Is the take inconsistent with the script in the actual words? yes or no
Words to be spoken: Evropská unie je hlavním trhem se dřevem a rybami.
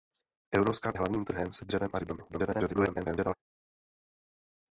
yes